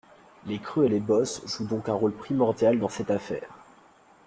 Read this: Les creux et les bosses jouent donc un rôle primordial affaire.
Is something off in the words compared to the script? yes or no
yes